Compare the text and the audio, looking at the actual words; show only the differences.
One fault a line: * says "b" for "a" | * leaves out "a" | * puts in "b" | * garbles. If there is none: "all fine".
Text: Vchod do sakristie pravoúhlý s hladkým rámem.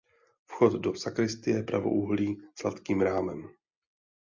all fine